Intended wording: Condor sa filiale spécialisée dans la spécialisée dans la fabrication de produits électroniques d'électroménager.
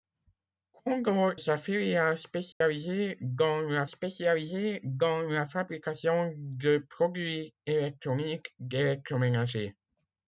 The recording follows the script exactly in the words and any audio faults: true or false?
false